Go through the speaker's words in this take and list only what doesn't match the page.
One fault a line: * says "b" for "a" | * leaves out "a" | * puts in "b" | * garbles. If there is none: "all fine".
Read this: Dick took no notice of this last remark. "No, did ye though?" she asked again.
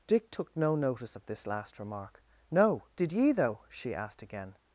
all fine